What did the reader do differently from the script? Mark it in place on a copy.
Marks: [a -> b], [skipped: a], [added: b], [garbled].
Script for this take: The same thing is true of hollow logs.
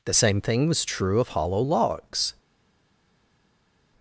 The same thing [is -> was] true of hollow logs.